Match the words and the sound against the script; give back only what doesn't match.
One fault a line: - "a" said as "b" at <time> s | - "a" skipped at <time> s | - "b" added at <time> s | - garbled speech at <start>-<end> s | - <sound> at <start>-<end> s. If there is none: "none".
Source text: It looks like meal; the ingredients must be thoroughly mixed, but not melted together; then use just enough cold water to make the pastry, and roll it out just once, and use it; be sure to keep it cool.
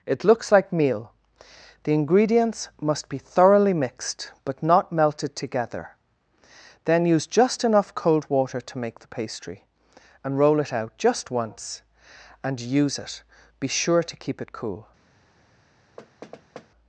- thud at 16.0-16.7 s